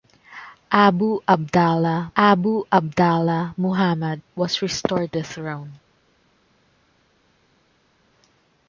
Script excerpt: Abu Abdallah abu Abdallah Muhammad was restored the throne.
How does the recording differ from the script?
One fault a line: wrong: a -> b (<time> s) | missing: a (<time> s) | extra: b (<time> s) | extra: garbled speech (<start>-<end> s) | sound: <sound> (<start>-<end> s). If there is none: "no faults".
no faults